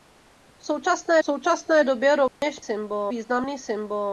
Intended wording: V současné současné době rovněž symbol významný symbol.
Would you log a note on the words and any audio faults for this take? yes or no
yes